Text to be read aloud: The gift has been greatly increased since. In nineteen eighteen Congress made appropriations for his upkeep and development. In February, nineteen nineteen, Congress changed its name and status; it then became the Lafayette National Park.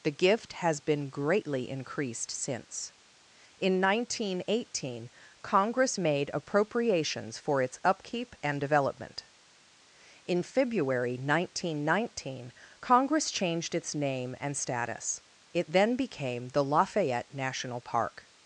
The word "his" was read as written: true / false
false